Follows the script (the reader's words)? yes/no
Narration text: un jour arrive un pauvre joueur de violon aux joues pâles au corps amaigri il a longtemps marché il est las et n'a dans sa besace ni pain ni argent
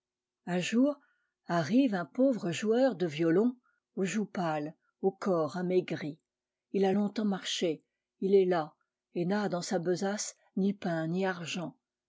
yes